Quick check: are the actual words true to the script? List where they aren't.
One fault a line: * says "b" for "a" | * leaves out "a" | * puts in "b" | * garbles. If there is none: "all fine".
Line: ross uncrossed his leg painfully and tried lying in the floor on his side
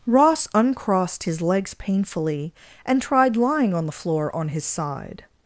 * says "legs" for "leg"
* says "on" for "in"